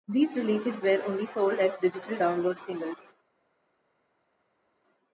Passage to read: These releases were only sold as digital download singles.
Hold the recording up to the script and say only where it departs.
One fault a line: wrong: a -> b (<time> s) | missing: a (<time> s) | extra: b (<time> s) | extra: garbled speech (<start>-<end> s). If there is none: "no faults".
no faults